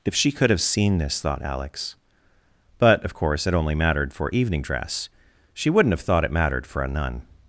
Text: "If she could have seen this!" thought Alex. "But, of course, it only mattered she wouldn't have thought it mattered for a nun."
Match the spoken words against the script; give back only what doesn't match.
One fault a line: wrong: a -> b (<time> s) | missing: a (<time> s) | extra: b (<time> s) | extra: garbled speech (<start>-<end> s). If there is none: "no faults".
extra: for evening dress (4.1 s)